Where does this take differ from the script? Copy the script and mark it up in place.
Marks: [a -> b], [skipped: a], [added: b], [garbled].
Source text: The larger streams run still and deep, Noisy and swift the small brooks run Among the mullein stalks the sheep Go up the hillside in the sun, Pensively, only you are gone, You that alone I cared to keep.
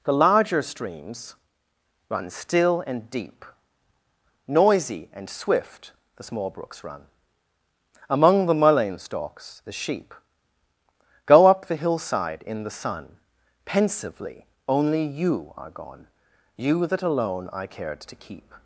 The larger streams run still and deep, Noisy and swift the small brooks run Among the mullein stalks the sheep Go up the hillside in the sun, Pensively, only you are gone, You that alone I cared to keep.